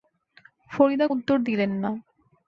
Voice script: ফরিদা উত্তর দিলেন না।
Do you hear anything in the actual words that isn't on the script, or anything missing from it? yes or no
no